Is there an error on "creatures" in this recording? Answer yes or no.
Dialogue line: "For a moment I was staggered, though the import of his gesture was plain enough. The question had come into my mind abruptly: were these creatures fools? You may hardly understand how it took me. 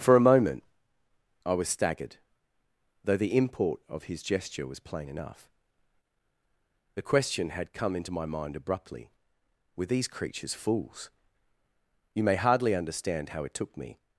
no